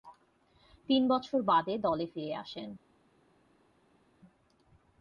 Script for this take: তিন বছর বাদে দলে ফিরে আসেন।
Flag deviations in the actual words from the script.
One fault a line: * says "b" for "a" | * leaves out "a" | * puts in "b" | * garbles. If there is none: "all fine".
all fine